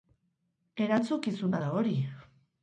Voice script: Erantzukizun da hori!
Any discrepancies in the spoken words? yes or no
no